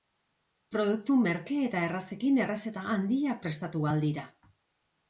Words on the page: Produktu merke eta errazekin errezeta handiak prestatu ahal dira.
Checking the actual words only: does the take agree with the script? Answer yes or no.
yes